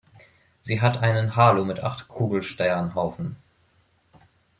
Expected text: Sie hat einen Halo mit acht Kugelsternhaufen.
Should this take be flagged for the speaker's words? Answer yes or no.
no